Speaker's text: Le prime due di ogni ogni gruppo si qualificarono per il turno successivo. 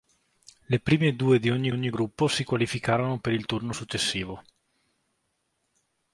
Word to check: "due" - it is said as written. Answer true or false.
true